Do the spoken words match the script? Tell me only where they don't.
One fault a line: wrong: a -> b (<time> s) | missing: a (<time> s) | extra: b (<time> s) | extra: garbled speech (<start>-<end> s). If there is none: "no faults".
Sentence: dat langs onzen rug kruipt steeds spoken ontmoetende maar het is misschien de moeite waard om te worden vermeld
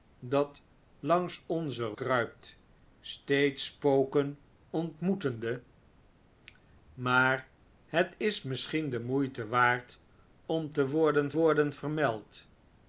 missing: rug (1.9 s)
extra: worden (11.3 s)